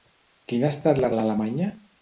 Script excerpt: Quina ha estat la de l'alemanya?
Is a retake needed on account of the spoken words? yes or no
no